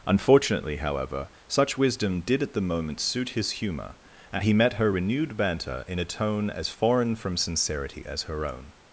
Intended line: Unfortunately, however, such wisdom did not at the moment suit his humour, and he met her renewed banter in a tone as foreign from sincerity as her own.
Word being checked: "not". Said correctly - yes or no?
no